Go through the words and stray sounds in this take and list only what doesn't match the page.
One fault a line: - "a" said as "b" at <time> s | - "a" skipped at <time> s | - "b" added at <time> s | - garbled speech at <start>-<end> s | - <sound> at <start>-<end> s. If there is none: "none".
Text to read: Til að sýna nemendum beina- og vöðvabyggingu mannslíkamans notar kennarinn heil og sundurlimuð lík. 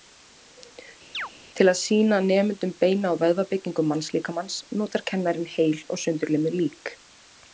- chirp at 1.1-1.3 s